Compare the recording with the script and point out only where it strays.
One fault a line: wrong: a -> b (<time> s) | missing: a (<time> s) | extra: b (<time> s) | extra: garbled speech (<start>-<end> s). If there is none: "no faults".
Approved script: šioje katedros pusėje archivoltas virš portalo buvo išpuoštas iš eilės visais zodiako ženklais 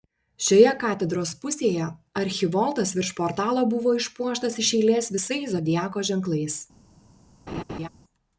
no faults